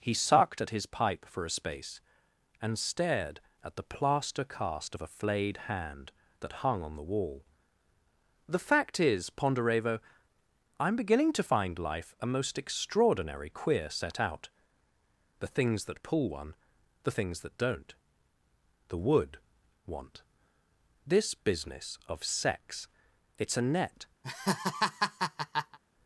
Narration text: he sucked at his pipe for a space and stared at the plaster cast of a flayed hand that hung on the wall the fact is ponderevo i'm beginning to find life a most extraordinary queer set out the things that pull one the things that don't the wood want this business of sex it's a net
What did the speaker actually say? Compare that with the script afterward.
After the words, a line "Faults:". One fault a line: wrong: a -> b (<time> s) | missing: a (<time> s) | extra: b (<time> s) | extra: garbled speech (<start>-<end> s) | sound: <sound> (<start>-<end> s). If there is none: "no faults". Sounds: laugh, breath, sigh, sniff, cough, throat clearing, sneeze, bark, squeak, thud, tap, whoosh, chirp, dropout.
he sucked at his pipe for a space and stared at the plaster cast of a flayed hand that hung on the wall the fact is ponderevo i'm beginning to find life a most extraordinary queer set out the things that pull one the things that don't the wood want this business of sex it's a net
Faults:
sound: laugh (24.2-25.8 s)